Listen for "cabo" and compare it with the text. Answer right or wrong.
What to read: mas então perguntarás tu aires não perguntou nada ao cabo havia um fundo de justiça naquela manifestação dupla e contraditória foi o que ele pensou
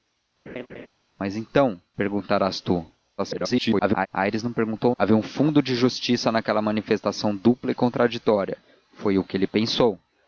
wrong